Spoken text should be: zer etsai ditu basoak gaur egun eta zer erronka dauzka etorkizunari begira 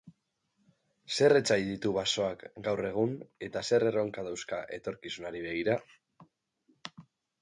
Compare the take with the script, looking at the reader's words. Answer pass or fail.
pass